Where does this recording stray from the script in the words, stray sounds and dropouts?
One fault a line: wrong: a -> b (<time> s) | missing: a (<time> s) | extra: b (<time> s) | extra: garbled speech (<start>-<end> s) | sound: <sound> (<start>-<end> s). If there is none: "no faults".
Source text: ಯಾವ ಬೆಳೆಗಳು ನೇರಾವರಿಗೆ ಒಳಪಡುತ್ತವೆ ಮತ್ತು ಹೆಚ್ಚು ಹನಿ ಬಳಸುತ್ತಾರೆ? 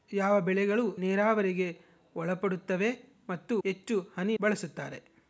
no faults